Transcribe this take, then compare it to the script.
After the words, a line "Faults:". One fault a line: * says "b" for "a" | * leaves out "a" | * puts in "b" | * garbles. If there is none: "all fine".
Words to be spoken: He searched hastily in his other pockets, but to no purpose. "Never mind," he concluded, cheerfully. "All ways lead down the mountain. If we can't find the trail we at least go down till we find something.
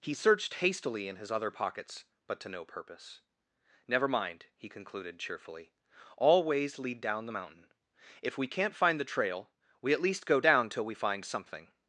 He searched hastily in his other pockets, but to no purpose. "Never mind," he concluded, cheerfully. "All ways lead down the mountain. If we can't find the trail we at least go down till we find something.
Faults:
all fine